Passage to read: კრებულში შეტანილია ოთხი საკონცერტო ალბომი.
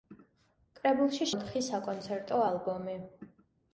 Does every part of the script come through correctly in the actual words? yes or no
no